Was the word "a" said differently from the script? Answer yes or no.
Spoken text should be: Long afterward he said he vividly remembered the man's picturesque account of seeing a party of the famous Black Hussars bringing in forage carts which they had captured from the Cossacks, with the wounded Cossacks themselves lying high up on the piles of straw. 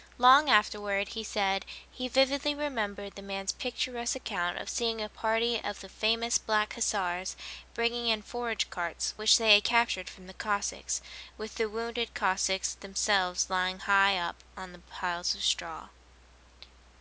no